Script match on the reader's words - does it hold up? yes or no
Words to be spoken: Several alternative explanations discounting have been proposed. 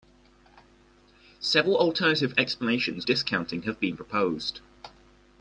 yes